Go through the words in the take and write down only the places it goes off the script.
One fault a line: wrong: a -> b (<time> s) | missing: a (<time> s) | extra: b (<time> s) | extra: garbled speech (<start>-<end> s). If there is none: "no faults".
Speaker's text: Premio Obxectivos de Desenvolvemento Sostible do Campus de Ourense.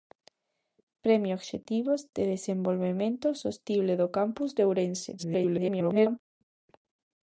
extra: garbled speech (5.2-6.2 s)